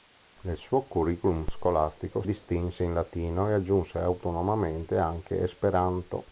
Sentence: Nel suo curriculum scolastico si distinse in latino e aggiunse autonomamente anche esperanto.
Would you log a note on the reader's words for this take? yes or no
yes